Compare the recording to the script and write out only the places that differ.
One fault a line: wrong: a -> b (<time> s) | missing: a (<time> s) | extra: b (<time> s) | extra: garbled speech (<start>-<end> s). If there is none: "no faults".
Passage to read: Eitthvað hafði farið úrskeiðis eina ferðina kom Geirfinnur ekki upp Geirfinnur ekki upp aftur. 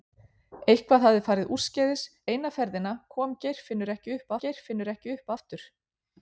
no faults